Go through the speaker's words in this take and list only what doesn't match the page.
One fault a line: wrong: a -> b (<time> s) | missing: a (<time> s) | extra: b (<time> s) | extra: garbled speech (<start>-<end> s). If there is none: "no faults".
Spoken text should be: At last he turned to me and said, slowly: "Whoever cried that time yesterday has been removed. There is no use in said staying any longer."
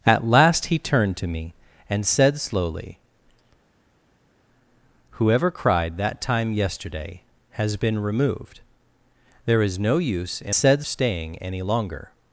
no faults